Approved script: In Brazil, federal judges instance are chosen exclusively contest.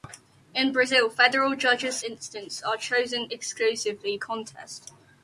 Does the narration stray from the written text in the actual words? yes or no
no